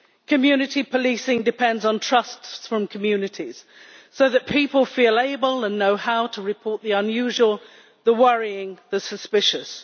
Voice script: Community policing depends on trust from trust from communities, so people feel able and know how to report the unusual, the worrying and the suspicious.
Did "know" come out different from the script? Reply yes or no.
no